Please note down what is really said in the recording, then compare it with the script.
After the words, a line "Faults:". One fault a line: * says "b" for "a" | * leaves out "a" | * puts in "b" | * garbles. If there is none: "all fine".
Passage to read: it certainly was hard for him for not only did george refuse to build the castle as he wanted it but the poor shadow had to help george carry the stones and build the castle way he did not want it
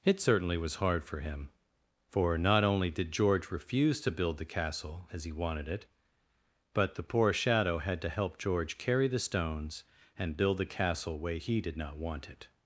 it certainly was hard for him for not only did george refuse to build the castle as he wanted it but the poor shadow had to help george carry the stones and build the castle way he did not want it
Faults:
all fine